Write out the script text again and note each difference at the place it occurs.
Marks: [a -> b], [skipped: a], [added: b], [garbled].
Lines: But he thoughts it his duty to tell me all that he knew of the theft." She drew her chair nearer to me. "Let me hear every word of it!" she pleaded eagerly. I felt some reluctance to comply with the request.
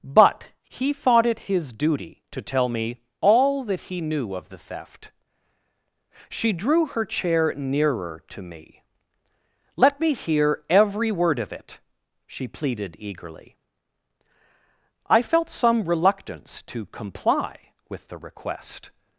But he [thoughts -> thought] it his duty to tell me all that he knew of the theft." She drew her chair nearer to me. "Let me hear every word of it!" she pleaded eagerly. I felt some reluctance to comply with the request.